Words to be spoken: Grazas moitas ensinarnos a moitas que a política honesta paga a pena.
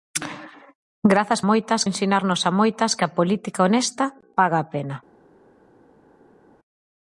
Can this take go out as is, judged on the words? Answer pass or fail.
pass